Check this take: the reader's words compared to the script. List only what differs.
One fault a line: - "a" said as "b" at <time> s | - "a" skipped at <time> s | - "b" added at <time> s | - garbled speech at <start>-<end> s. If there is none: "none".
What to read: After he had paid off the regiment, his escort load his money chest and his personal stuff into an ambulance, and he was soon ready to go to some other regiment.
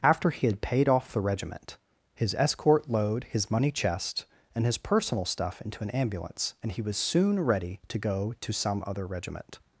none